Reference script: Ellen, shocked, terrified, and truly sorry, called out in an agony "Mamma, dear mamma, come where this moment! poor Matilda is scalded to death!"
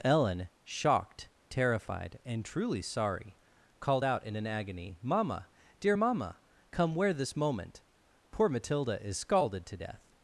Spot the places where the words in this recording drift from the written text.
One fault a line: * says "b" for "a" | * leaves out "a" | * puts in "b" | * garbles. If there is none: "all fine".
all fine